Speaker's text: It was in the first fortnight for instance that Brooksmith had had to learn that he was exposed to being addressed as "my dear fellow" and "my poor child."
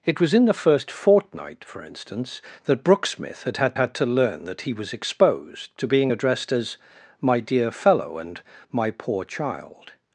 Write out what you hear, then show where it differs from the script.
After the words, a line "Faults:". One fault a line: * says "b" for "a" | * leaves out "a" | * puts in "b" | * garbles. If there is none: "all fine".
It was in the first fortnight for instance that Brooksmith had had had to learn that he was exposed to being addressed as "my dear fellow" and "my poor child."
Faults:
* puts in "had"